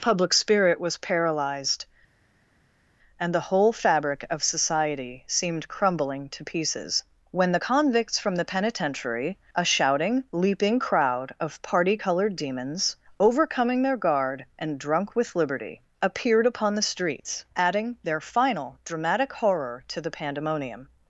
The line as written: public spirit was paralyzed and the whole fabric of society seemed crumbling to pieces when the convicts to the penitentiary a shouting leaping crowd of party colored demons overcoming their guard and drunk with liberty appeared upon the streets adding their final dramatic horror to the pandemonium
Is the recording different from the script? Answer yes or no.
yes